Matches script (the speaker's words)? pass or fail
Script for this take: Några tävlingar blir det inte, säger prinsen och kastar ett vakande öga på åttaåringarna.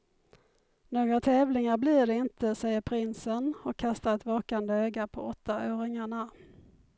pass